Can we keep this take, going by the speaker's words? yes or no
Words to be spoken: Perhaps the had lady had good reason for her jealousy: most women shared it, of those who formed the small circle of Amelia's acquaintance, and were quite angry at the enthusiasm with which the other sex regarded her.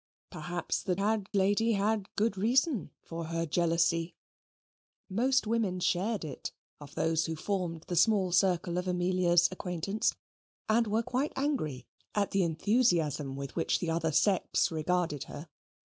yes